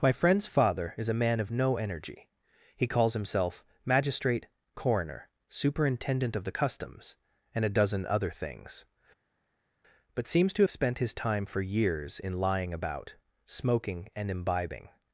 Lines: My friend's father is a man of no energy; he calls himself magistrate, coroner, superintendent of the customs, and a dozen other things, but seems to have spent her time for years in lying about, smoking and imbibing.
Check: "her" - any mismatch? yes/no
yes